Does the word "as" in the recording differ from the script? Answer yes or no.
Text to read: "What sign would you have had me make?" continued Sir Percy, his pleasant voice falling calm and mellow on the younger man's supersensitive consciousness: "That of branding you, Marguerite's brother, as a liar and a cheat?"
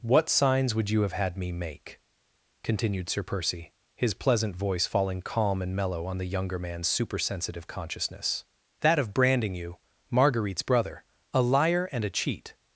yes